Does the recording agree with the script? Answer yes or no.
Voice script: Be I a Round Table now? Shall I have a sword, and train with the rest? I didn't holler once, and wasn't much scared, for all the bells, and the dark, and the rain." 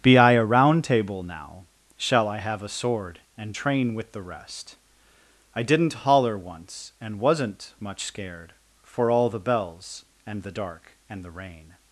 yes